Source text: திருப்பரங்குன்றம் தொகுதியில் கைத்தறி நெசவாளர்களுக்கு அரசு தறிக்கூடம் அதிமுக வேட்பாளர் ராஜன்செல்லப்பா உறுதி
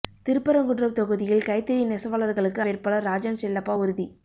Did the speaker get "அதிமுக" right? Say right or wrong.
wrong